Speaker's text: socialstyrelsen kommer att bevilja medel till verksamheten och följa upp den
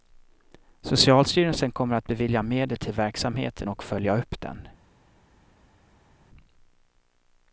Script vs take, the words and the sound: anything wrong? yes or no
no